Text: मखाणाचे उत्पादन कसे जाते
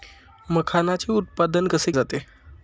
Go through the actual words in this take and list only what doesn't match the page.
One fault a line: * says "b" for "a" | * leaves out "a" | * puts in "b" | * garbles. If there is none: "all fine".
all fine